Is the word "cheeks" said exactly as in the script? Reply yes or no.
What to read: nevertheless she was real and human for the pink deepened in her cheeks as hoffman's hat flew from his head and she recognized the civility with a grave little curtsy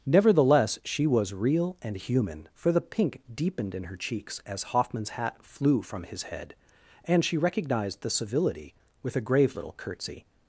yes